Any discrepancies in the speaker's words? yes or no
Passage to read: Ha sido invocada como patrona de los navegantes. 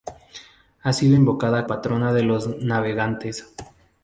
yes